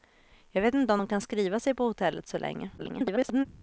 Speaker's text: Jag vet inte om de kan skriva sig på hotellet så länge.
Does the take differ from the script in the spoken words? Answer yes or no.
yes